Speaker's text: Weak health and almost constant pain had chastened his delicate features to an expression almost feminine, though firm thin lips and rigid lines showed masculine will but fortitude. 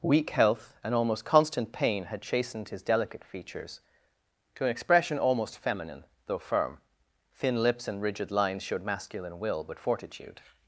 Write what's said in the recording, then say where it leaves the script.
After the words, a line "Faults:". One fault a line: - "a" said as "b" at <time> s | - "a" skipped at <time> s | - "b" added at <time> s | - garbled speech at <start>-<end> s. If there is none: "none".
Weak health and almost constant pain had chastened his delicate features to an expression almost feminine, though firm thin lips and rigid lines showed masculine will but fortitude.
Faults:
none